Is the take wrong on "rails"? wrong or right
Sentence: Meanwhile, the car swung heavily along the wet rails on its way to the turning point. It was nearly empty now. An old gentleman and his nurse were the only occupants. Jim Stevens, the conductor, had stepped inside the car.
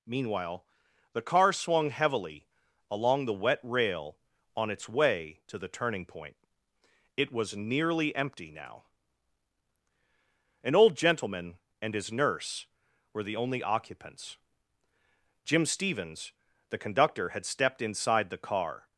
wrong